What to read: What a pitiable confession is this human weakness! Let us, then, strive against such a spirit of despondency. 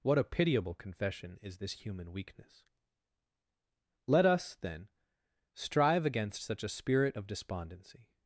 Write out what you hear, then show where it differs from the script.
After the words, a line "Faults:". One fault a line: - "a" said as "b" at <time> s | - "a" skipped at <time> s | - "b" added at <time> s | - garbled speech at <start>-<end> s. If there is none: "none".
What a pitiable confession is this human weakness! Let us, then, strive against such a spirit of despondency.
Faults:
none